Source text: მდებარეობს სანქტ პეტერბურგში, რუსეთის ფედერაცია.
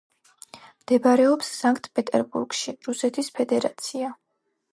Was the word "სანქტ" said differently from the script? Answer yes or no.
no